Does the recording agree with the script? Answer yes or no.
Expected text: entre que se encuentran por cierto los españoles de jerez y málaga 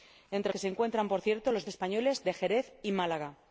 yes